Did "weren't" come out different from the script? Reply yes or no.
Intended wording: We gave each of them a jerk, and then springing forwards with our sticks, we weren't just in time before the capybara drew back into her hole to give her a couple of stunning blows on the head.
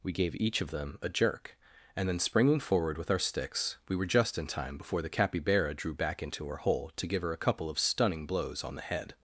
yes